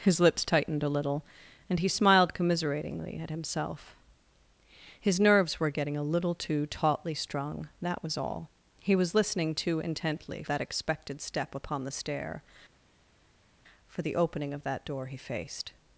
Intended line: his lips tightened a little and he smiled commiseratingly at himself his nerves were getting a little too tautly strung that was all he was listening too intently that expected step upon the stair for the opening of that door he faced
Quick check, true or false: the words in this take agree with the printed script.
true